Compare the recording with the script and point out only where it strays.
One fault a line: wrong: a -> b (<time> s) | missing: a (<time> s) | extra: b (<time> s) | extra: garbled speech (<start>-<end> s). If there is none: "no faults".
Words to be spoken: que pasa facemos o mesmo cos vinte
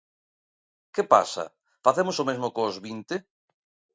no faults